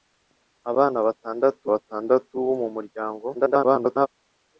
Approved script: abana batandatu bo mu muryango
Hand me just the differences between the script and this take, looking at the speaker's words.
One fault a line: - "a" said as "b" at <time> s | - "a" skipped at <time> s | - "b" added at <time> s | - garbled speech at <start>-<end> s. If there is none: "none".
- "batandatu" added at 1.7 s
- garbled speech at 3.3-4.1 s